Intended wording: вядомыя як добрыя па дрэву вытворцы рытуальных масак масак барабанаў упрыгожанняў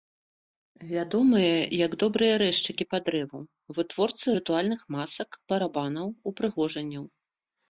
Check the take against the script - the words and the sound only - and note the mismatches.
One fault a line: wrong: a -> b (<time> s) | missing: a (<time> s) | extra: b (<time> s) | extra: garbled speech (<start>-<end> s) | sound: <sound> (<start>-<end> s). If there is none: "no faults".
extra: рэзчыкі (2.4 s)
missing: масак (5.3 s)